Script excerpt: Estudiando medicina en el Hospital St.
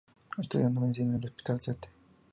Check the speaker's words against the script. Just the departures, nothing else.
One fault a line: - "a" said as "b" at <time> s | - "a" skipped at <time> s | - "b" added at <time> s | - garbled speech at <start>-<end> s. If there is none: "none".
none